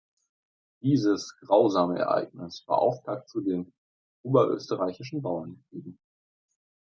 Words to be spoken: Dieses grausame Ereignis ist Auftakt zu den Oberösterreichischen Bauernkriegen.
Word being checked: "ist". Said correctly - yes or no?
no